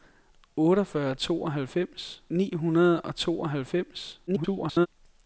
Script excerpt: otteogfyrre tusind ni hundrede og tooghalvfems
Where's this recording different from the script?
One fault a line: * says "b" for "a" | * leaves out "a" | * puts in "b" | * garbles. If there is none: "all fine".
* says "tooghalvfems" for "tusind"
* garbles